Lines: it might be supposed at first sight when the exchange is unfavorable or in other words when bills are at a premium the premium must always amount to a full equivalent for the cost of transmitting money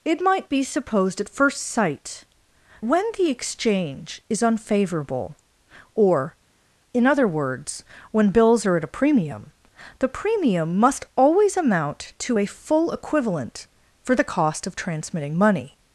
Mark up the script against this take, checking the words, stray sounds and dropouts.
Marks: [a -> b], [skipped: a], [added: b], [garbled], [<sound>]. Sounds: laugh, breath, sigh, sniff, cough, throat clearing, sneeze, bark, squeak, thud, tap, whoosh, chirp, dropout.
it might be supposed at first sight when the exchange is unfavorable or in other words when bills are at a premium the premium must always amount to a full equivalent for the cost of transmitting money